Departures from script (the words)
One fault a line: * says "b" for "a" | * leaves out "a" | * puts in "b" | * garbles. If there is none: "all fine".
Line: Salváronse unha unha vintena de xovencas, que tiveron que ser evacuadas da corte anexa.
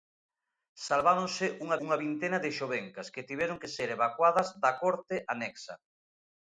all fine